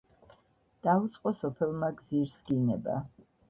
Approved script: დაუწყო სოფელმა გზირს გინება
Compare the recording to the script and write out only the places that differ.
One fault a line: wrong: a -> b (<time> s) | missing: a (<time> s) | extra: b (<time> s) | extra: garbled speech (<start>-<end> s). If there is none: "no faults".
no faults